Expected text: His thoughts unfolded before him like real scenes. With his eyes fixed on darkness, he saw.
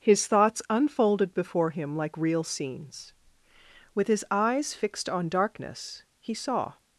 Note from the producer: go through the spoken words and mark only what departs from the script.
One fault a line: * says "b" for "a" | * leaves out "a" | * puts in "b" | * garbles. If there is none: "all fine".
all fine